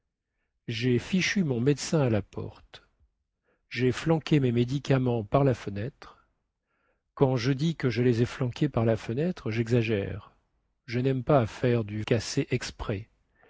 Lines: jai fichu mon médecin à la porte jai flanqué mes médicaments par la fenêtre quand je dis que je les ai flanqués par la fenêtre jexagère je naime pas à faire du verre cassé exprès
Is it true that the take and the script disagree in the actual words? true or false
true